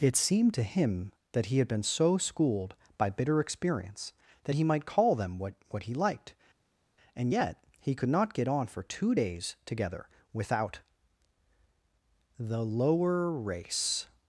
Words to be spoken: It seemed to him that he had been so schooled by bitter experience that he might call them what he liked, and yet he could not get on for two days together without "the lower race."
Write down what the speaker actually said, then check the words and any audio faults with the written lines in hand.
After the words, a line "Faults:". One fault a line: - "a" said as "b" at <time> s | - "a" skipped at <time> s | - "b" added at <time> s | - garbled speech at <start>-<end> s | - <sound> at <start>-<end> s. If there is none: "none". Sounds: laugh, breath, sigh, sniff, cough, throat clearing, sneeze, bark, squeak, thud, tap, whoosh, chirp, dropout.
It seemed to him that he had been so schooled by bitter experience that he might call them what what he liked, and yet he could not get on for two days together without "the lower race."
Faults:
- "what" added at 5.7 s